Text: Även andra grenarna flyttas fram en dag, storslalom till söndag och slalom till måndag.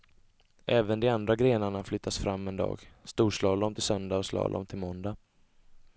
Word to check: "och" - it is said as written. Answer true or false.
true